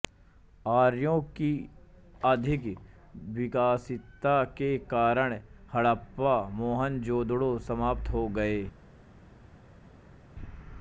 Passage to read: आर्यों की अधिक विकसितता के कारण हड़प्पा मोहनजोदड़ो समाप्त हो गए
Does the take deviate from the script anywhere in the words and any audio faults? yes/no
no